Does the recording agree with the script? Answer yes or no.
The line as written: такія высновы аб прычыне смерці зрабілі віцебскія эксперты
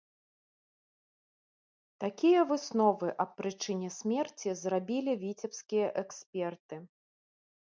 yes